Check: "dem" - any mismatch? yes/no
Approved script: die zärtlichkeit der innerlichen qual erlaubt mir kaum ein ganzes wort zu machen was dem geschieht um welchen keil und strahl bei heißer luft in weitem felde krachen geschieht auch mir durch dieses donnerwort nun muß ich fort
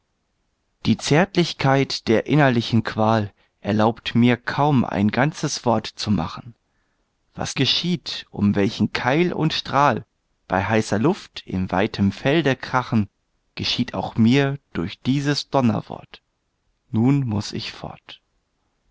yes